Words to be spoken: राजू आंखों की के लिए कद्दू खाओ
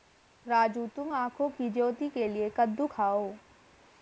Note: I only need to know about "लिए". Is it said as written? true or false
true